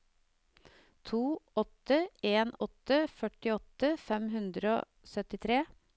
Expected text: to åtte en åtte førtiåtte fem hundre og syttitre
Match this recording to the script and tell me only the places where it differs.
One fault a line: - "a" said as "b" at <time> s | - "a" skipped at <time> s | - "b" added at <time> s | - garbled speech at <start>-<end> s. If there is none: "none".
none